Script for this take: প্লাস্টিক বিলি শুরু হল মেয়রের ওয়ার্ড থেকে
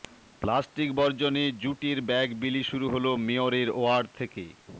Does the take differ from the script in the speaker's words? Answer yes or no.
yes